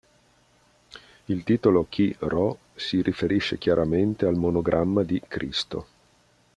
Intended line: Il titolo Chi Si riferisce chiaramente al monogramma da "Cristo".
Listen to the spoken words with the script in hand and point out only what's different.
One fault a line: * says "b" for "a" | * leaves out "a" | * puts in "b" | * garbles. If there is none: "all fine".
* puts in "Rho"
* says "di" for "da"